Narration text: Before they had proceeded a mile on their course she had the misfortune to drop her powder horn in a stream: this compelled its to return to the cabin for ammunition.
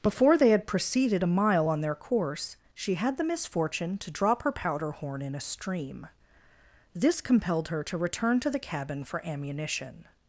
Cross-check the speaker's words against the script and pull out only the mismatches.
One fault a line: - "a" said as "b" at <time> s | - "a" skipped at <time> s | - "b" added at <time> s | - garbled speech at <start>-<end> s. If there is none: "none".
- "its" said as "her" at 7.7 s